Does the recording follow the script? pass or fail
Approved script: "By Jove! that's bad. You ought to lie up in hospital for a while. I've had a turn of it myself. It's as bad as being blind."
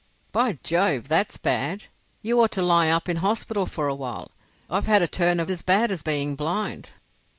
fail